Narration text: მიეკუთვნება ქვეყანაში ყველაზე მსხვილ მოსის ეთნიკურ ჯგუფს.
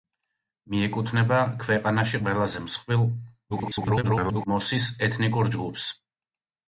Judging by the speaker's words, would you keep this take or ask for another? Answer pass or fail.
fail